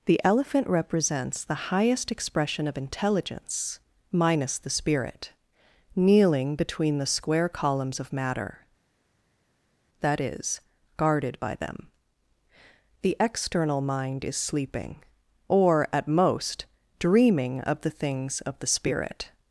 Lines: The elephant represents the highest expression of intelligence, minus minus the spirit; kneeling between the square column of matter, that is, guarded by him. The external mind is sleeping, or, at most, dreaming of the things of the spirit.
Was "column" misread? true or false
true